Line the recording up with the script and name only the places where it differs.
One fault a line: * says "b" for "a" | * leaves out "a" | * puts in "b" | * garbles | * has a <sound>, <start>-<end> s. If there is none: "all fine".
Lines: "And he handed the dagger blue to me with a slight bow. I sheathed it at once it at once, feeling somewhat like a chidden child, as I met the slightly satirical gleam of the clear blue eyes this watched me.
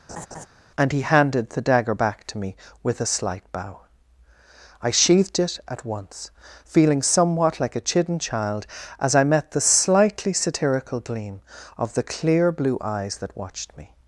* has a laugh, 0.1-0.5 s
* says "back" for "blue"
* leaves out "it at once"
* says "that" for "this"